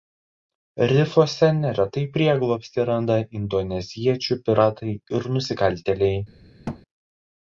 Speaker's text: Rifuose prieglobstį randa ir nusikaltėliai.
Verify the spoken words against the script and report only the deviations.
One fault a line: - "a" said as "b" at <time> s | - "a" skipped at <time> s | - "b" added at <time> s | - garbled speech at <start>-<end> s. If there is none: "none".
- "neretai" added at 1.6 s
- "indoneziečių piratai" added at 3.4 s